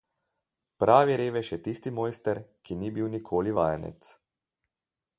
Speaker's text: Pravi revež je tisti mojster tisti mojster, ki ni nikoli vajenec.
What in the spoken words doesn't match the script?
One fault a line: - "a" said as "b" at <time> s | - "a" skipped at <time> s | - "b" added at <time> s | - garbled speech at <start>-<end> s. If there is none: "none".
- "tisti mojster" skipped at 2.4 s
- "bil" added at 3.0 s